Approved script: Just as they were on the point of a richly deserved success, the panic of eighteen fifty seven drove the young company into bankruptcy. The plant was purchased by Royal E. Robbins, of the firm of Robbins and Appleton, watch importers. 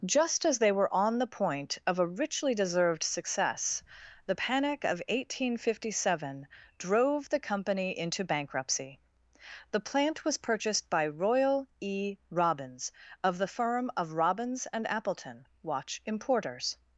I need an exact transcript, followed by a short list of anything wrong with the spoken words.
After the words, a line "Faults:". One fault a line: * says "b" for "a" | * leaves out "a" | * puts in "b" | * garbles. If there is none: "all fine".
Just as they were on the point of a richly deserved success, the panic of eighteen fifty seven drove the company into bankruptcy. The plant was purchased by Royal E. Robbins, of the firm of Robbins and Appleton, watch importers.
Faults:
* leaves out "young"